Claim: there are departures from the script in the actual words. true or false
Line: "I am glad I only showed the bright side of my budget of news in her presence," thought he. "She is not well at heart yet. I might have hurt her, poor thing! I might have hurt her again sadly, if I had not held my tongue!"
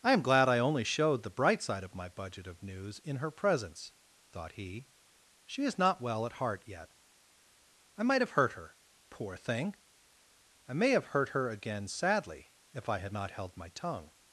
true